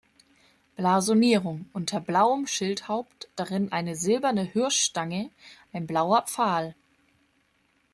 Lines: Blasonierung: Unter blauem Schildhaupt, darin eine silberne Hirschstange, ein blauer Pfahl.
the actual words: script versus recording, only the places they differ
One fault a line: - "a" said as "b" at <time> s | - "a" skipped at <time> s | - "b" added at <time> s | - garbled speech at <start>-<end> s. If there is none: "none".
none